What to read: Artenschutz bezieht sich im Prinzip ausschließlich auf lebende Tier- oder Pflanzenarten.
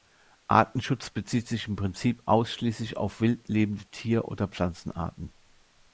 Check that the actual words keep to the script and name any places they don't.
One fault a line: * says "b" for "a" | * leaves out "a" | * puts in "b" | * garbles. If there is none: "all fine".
* puts in "wild"